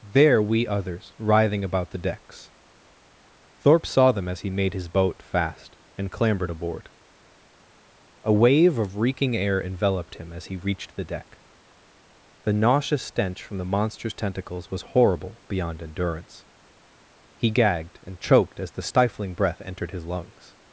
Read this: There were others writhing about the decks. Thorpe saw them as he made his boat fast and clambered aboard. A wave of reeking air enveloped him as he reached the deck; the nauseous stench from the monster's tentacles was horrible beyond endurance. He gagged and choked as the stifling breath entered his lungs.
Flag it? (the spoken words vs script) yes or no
yes